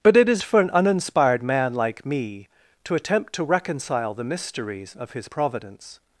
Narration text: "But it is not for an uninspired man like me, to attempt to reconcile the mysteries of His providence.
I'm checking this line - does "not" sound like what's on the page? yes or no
no